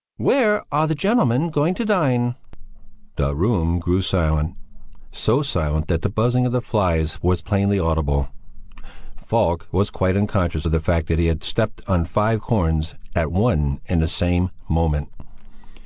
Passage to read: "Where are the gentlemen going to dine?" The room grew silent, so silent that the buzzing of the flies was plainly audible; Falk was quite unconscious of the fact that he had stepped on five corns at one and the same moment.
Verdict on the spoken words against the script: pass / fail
pass